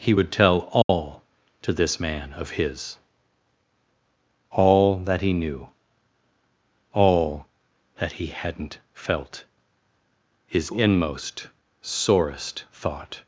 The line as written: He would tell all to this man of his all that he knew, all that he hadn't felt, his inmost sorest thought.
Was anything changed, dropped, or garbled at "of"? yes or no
no